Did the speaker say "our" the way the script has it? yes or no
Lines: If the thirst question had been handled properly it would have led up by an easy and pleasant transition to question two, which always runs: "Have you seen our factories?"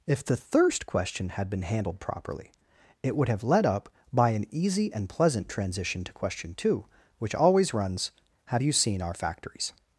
yes